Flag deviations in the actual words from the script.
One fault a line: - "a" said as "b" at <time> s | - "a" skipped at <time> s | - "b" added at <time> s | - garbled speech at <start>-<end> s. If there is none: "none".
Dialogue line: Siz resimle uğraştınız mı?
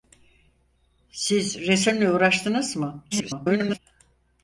- garbled speech at 3.1-3.8 s